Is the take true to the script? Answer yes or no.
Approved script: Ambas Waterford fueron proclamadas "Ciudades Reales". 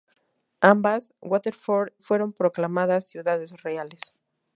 yes